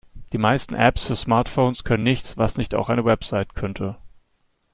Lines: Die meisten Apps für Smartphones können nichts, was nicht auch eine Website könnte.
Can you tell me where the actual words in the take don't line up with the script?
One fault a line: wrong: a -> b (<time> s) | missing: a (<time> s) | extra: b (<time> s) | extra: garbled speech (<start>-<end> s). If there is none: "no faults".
no faults